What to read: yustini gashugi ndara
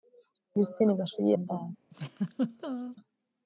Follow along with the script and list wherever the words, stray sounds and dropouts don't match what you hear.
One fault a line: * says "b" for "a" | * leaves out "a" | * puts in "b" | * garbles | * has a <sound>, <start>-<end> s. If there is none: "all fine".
* has a laugh, 1.9-3.0 s